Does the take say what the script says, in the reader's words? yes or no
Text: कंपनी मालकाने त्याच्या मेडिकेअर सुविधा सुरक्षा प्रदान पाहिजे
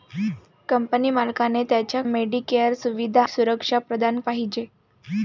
yes